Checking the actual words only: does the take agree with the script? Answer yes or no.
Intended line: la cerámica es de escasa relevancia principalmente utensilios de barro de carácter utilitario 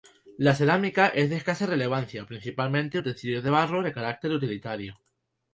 yes